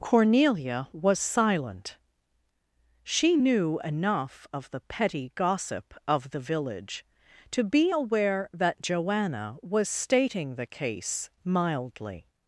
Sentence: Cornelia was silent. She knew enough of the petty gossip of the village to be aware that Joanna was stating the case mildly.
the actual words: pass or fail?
pass